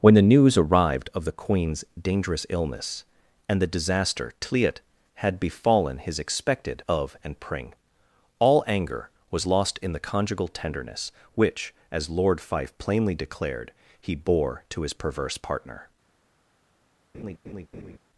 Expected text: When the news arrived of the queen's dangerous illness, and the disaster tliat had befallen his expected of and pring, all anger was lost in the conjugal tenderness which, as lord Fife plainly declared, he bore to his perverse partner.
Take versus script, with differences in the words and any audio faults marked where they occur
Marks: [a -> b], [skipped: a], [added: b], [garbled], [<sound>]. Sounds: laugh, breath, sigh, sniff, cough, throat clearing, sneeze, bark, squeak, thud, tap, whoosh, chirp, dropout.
When the news arrived of the queen's dangerous illness, and the disaster tliat had befallen his expected of and pring, all anger was lost in the conjugal tenderness which, as lord Fife plainly declared, he bore to his perverse partner. [laugh]